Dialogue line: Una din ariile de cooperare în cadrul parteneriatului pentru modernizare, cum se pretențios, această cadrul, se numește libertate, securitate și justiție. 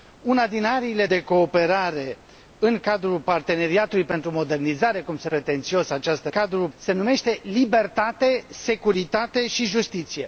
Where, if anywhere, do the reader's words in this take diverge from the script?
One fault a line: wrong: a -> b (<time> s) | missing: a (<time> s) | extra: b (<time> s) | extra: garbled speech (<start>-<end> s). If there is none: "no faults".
no faults